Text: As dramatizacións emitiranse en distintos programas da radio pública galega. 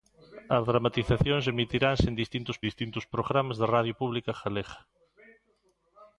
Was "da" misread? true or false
false